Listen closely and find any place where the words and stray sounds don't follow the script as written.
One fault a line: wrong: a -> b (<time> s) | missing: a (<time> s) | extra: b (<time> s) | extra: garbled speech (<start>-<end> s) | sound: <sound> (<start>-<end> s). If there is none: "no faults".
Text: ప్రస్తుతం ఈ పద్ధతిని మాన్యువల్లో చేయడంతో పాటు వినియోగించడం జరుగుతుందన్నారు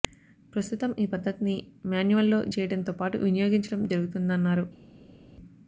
no faults